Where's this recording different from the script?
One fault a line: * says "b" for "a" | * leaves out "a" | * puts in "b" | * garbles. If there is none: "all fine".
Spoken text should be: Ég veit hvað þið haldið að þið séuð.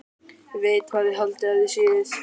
all fine